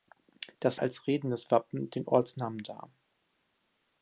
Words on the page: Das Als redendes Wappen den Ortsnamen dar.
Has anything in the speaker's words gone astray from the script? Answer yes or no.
no